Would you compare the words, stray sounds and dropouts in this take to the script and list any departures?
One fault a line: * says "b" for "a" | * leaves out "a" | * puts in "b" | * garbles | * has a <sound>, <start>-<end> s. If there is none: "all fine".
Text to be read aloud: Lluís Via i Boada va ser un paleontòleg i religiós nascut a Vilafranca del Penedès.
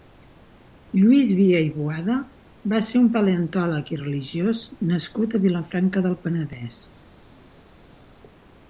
all fine